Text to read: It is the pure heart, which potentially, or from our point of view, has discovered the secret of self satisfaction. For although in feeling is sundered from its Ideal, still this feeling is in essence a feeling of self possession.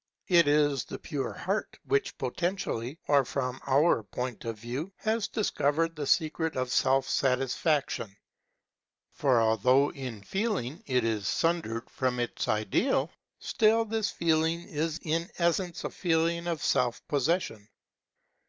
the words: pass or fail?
fail